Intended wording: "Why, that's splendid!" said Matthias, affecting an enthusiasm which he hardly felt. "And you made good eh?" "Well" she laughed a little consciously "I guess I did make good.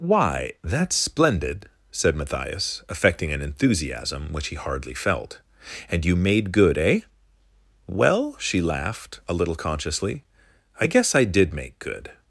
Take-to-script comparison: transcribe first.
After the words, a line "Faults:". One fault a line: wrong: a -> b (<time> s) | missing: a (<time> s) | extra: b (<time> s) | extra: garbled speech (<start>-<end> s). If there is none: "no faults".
"Why, that's splendid!" said Matthias, affecting an enthusiasm which he hardly felt. "And you made good eh?" "Well" she laughed a little consciously "I guess I did make good.
Faults:
no faults